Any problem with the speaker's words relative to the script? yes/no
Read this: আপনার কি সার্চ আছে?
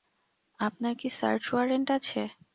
yes